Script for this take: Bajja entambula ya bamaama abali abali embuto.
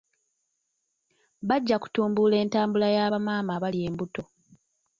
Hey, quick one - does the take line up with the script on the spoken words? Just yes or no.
no